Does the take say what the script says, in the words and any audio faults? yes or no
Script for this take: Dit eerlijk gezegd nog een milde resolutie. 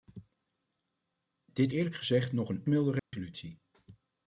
no